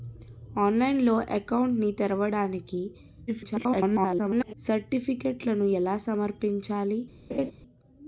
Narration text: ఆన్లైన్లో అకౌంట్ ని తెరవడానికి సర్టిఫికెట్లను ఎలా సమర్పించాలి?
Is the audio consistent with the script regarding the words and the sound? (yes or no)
no